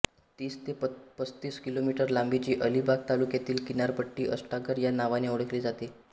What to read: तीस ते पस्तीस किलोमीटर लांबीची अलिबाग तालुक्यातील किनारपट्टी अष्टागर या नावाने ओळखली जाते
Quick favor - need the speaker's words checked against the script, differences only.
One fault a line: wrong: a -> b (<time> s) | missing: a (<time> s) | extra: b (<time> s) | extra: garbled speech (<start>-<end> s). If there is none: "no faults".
no faults